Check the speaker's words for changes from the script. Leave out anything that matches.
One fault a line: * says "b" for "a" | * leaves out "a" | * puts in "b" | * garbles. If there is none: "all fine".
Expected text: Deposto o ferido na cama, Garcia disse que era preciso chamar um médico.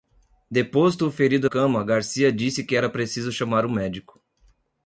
* leaves out "na"